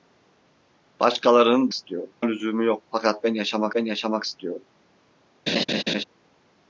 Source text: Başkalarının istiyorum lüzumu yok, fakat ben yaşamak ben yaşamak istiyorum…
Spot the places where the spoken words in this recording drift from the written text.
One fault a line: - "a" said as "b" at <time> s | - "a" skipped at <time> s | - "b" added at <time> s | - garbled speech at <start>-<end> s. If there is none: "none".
none